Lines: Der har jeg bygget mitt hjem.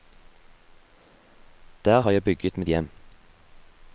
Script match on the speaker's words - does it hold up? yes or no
yes